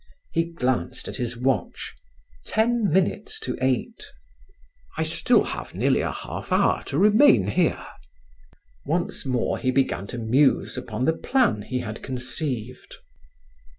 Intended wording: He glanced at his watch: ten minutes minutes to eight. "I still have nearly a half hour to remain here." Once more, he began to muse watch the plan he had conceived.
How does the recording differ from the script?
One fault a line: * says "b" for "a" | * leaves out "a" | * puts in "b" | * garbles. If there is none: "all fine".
* leaves out "minutes"
* says "upon" for "watch"